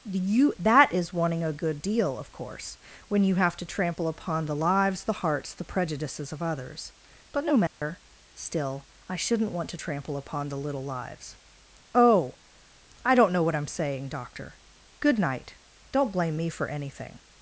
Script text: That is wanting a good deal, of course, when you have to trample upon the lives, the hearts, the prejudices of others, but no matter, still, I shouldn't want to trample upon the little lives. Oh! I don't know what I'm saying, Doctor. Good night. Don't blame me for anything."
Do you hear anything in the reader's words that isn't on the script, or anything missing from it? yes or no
yes